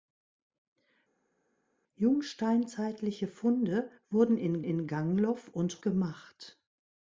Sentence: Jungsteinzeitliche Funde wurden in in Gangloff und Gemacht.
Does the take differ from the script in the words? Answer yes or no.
no